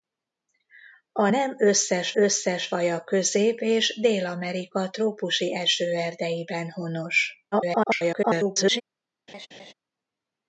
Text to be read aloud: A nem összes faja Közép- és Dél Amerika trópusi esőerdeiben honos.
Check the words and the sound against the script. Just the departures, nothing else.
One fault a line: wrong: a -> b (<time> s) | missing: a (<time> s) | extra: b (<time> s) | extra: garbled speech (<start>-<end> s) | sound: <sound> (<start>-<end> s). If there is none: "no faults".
extra: összes (2.1 s)
extra: garbled speech (7.5-8.8 s)
sound: laugh (9.3-9.7 s)